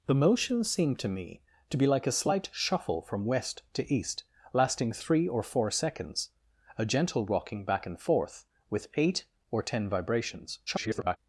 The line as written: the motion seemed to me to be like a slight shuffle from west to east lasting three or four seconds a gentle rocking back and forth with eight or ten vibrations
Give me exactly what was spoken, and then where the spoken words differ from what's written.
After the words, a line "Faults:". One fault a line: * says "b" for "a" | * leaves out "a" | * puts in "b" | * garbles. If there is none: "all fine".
the motion seemed to me to be like a slight shuffle from west to east lasting three or four seconds a gentle rocking back and forth with eight or ten vibrations [garbled]
Faults:
* garbles